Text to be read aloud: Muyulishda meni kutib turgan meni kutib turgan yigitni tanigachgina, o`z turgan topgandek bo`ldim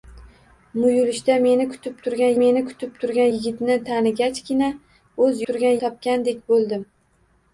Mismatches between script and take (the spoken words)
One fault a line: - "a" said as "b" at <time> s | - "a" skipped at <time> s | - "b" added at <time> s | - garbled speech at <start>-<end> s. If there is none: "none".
none